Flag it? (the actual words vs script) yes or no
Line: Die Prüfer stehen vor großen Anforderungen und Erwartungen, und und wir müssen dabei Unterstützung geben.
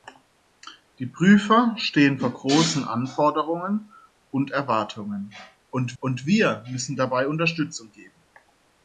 no